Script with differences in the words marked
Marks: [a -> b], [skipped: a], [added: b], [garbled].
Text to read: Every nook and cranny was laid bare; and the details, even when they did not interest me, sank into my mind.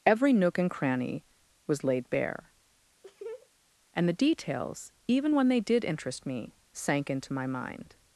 Every nook and cranny was laid bare; and the details, even when they did [skipped: not] interest me, sank into my mind.